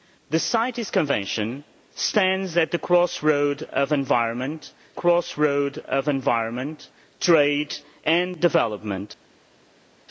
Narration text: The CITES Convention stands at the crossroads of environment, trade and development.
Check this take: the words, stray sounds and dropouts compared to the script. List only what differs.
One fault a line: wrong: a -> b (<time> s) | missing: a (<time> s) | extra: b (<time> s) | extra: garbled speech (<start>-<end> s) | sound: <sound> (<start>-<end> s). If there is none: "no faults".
extra: crossroads of environment (4.9 s)